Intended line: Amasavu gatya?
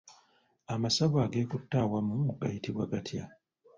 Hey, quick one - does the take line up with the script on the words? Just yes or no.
no